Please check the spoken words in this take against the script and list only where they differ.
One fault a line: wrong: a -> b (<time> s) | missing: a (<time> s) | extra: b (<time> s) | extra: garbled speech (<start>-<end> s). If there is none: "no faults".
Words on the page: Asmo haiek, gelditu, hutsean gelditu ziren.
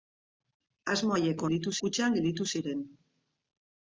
no faults